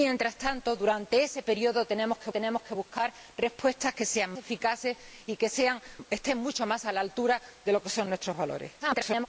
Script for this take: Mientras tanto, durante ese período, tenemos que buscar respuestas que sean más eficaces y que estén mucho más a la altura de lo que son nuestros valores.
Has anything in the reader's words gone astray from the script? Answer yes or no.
yes